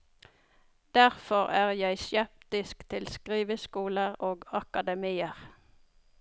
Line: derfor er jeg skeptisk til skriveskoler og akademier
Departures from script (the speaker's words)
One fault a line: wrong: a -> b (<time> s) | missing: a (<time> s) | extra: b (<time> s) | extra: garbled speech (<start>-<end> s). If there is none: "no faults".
no faults